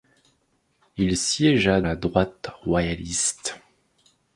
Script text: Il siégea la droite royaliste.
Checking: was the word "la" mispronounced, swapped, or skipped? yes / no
no